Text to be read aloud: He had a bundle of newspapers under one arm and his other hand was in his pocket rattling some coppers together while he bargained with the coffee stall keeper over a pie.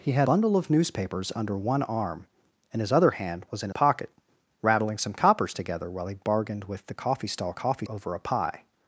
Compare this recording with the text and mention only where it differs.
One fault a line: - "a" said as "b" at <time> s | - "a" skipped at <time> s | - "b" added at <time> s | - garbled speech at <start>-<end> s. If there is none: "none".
- "a" skipped at 0.3 s
- "his" skipped at 3.7 s
- "keeper" said as "coffee" at 7.5 s